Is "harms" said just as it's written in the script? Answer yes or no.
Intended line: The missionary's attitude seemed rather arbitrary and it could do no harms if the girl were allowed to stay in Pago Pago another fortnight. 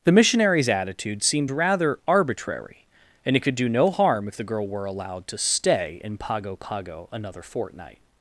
no